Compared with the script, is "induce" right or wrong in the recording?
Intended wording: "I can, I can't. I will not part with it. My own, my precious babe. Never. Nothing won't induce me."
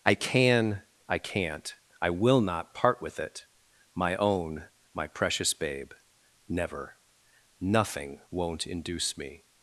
right